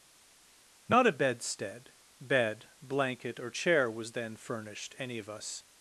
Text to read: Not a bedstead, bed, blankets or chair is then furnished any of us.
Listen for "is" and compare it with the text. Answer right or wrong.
wrong